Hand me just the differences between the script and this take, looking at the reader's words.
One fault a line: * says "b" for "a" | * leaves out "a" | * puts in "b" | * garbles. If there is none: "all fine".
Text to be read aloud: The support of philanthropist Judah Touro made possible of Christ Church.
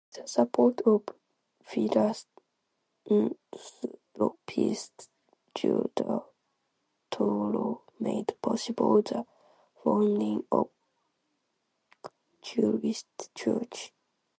* puts in "the founding"